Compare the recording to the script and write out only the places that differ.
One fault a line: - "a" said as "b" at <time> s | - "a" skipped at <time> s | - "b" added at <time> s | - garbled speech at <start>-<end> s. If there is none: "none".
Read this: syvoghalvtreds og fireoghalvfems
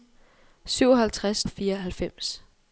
none